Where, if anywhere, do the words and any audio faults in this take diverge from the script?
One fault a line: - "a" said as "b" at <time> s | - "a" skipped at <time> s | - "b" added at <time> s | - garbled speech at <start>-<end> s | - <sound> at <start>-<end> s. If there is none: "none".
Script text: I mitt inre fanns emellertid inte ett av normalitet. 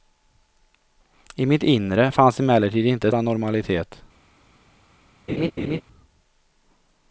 - laugh at 5.3-5.8 s